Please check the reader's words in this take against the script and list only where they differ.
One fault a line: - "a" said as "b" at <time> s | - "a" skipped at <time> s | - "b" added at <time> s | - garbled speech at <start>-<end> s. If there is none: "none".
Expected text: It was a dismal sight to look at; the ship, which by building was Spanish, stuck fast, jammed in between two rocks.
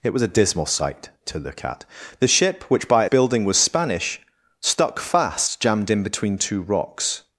none